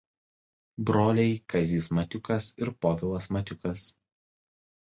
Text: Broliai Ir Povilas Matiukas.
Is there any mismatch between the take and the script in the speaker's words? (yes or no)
yes